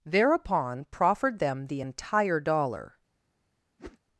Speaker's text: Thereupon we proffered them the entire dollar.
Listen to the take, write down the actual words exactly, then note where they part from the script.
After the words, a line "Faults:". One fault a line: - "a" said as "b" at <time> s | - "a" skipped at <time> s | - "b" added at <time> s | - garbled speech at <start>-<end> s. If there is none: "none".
Thereupon proffered them the entire dollar.
Faults:
- "we" skipped at 0.8 s